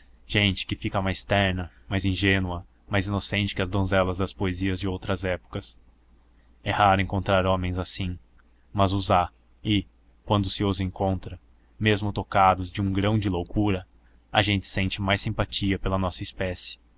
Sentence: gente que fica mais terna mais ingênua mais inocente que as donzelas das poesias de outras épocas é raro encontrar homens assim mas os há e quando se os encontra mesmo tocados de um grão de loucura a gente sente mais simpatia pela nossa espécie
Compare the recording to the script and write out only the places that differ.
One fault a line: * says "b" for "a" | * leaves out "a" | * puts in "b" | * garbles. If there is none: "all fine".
all fine